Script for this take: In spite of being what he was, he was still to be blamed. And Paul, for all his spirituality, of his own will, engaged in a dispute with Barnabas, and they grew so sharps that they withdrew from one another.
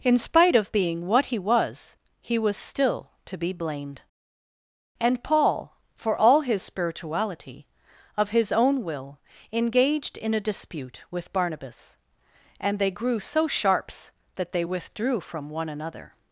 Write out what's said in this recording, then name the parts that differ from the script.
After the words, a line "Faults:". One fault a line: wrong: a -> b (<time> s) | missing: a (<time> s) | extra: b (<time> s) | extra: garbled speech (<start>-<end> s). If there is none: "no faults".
In spite of being what he was, he was still to be blamed. And Paul, for all his spirituality, of his own will, engaged in a dispute with Barnabas, and they grew so sharps that they withdrew from one another.
Faults:
no faults